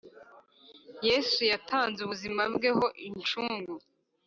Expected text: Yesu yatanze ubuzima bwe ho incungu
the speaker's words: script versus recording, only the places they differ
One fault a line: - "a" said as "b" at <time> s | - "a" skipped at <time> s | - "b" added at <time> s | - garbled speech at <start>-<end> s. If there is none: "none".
none